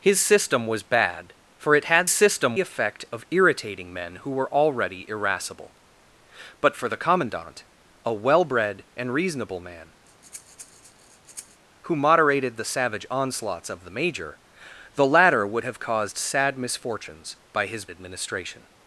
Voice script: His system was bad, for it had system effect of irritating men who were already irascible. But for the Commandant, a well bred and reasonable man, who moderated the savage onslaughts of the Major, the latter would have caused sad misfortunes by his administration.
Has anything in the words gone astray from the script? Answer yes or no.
no